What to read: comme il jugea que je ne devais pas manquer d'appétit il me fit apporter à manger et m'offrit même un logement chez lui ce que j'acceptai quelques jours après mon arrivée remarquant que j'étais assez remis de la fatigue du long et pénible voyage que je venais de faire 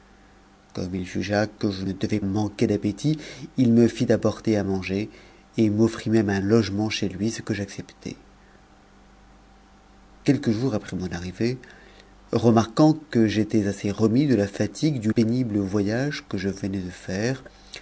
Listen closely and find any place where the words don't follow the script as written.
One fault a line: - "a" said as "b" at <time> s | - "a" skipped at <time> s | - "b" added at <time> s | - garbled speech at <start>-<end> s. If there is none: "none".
- "pas" skipped at 2.2 s
- "long et" skipped at 15.1 s